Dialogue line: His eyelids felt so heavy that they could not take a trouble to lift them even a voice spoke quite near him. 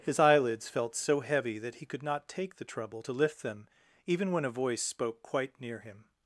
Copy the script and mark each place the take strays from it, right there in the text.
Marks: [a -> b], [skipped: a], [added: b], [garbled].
His eyelids felt so heavy that [they -> he] could not take [a -> the] trouble to lift them even [added: when] a voice spoke quite near him.